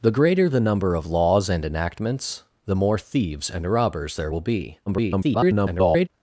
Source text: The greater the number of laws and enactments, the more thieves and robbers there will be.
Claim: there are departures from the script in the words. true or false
true